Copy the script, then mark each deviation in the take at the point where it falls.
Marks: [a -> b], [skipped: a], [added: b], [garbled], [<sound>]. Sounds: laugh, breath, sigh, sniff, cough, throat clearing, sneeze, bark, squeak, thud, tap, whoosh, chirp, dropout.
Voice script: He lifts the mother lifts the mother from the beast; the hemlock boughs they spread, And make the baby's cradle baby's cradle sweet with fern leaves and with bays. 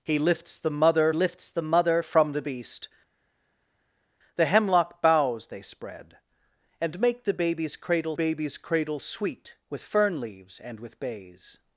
He lifts the mother lifts the mother from the beast; the hemlock boughs they spread, And make the baby's cradle baby's cradle sweet with fern leaves and with bays.